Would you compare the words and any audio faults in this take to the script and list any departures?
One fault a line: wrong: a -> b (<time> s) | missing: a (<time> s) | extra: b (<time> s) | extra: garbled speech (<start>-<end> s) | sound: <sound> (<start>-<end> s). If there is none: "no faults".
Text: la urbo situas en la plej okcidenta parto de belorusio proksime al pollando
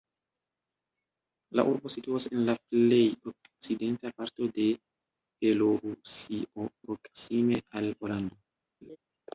sound: laugh (8.8-9.0 s)